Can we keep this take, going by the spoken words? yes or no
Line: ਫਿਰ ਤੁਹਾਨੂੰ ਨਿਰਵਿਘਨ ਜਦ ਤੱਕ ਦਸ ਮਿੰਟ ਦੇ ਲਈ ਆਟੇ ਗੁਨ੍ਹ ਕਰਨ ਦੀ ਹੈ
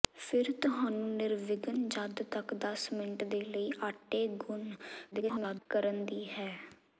no